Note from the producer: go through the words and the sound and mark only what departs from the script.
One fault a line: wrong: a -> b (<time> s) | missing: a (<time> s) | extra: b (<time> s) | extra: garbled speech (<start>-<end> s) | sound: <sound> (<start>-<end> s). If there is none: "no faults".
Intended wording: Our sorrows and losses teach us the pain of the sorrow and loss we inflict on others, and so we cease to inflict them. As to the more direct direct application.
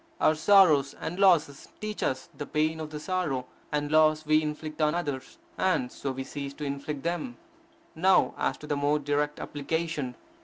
extra: Now (8.0 s)
missing: direct (9.4 s)